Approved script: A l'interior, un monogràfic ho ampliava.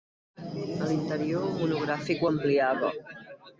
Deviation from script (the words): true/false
false